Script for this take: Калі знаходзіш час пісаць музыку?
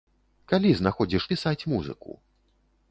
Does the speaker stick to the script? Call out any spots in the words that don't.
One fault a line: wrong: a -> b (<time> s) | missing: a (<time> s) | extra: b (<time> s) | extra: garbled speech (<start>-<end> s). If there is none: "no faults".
missing: час (1.3 s)